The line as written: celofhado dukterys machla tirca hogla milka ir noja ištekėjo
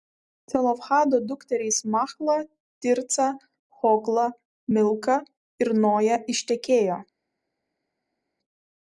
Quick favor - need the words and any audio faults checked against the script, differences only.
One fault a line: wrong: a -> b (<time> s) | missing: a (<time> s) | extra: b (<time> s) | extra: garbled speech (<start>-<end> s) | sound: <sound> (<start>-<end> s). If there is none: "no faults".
no faults